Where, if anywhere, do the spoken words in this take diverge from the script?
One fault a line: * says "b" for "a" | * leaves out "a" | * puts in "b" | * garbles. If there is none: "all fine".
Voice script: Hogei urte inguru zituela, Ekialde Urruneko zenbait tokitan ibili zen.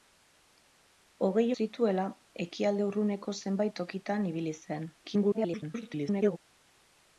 * leaves out "urte inguru"
* garbles